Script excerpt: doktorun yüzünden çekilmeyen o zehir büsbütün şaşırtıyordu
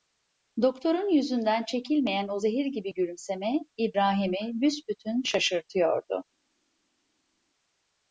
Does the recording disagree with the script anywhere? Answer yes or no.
yes